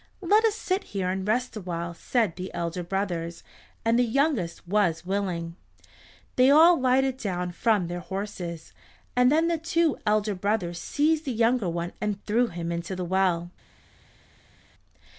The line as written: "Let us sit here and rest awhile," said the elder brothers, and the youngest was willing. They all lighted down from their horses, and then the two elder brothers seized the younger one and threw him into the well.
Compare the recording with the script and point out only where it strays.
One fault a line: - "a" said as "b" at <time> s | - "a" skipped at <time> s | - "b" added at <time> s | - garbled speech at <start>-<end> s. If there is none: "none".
none